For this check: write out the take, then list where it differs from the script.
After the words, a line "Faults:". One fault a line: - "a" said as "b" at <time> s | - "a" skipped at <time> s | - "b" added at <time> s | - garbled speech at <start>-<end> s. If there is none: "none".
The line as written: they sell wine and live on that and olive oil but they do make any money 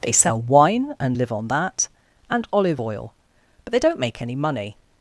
they sell wine and live on that and olive oil but they don't make any money
Faults:
- "do" said as "don't" at 3.8 s